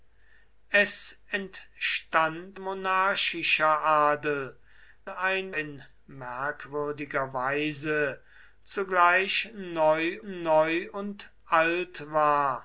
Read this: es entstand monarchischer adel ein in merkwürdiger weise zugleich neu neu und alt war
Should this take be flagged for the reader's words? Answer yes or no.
no